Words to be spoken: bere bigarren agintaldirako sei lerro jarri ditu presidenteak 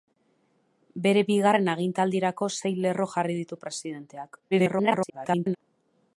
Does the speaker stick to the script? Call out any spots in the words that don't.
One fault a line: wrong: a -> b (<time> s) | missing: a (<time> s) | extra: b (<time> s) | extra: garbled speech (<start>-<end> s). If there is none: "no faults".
extra: garbled speech (4.5-5.6 s)